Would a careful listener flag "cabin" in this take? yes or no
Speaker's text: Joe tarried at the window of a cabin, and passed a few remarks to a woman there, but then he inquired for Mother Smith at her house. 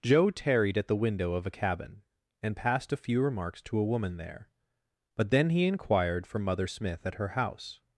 no